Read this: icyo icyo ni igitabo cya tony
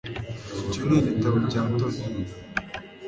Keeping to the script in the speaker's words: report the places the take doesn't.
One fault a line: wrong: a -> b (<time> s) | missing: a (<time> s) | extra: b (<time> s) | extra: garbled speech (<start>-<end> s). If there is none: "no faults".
missing: icyo (0.8 s)